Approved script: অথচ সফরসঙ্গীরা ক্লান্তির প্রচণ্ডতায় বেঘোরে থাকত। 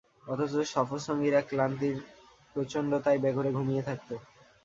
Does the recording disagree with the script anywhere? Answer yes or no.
yes